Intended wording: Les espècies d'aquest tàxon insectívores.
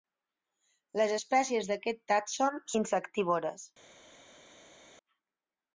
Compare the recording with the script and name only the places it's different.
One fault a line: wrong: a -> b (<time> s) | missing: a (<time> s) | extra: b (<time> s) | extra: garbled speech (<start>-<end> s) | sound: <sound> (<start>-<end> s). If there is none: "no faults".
no faults